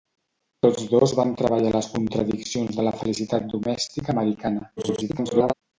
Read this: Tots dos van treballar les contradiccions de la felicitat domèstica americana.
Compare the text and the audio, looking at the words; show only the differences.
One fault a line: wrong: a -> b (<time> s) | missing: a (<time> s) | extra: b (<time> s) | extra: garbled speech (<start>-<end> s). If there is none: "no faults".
extra: garbled speech (4.8-5.5 s)